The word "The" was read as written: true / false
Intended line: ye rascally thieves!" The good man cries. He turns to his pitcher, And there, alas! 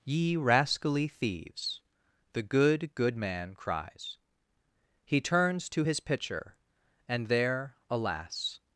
true